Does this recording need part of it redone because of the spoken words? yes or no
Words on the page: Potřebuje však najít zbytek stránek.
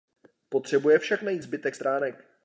no